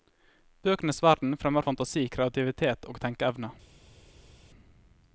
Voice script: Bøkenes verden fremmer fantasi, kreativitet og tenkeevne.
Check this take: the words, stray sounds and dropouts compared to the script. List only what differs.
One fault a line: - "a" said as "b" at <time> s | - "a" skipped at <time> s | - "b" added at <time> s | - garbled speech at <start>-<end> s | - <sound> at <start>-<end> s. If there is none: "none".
none